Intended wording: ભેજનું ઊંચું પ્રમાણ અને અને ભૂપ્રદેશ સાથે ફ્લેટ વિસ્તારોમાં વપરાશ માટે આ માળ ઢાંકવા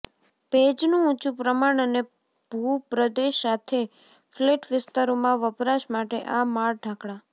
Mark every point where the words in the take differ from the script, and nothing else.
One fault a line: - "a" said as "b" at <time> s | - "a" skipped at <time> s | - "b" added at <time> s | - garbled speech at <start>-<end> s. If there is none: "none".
- "અને" skipped at 2.0 s